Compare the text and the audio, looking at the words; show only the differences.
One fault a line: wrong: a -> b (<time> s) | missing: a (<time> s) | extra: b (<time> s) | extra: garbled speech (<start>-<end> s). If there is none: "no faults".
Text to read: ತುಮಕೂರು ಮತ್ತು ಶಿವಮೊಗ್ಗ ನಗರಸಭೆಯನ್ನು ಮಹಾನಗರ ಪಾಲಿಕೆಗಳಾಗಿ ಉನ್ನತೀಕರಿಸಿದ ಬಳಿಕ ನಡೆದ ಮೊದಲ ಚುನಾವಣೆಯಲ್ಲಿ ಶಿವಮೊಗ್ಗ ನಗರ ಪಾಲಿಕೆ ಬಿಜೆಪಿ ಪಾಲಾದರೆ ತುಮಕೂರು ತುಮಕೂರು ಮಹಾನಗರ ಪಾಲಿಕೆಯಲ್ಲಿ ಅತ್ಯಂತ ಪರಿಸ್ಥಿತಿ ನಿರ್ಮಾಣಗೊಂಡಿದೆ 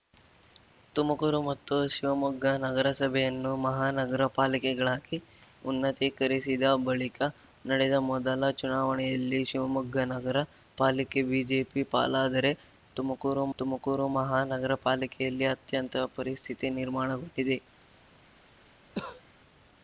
no faults